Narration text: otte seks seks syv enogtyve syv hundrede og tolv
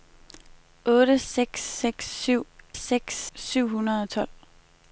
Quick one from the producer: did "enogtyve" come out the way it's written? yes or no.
no